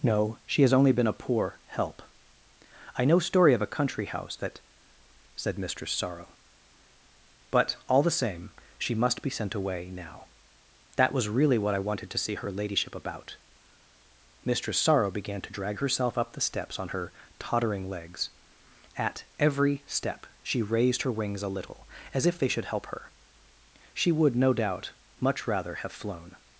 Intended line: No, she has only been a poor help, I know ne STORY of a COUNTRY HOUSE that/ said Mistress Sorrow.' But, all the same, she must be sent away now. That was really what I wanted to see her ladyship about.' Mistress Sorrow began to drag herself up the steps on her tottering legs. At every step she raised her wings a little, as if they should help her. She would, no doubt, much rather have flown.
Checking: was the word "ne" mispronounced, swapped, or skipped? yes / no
yes